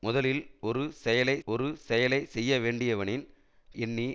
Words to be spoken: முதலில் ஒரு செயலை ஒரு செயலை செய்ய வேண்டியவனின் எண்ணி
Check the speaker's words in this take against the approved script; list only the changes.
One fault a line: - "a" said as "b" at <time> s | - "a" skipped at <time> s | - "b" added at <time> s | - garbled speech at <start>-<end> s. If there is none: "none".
none